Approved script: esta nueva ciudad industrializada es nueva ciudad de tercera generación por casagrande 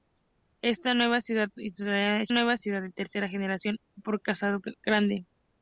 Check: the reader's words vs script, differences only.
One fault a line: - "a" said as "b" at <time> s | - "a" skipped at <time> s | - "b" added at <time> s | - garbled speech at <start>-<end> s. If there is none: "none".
none